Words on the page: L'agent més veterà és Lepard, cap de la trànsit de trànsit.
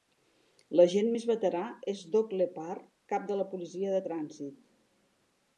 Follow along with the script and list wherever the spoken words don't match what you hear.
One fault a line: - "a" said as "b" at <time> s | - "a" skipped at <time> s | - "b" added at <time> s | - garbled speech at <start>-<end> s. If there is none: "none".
- "Doug" added at 2.2 s
- "trànsit" said as "policia" at 3.5 s